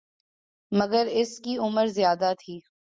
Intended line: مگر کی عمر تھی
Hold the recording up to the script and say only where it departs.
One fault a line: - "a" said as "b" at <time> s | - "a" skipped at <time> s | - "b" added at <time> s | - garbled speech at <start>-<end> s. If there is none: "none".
- "اس" added at 1.1 s
- "زیادہ" added at 1.9 s